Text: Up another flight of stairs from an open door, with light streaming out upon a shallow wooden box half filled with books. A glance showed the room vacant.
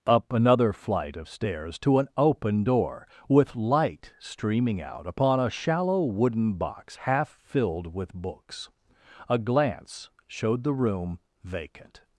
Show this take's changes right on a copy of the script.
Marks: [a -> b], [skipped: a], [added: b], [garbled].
Up another flight of stairs [from -> to] an open door, with light streaming out upon a shallow wooden box half filled with books. A glance showed the room vacant.